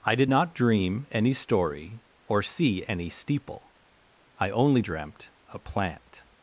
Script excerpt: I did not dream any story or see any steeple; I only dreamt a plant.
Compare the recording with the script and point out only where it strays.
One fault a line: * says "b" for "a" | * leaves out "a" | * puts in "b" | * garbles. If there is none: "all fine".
all fine